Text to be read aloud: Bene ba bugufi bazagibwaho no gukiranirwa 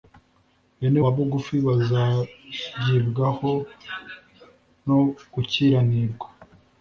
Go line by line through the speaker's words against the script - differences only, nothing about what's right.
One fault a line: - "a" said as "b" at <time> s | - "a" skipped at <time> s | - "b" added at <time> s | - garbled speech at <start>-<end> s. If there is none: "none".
none